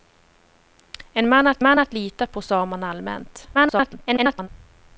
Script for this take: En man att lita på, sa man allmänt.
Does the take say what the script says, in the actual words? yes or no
no